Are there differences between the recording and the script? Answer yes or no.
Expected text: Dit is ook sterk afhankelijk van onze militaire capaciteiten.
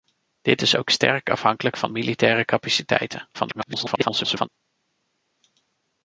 yes